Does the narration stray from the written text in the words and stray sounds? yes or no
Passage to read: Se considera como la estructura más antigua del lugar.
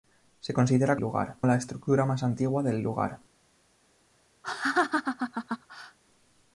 yes